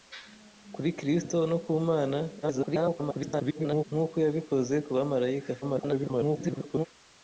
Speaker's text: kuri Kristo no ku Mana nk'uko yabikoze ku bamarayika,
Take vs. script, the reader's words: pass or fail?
fail